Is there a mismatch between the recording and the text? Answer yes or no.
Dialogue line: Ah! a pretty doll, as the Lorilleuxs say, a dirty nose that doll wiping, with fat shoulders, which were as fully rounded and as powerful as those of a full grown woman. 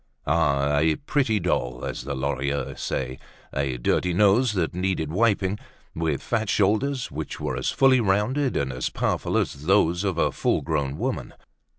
yes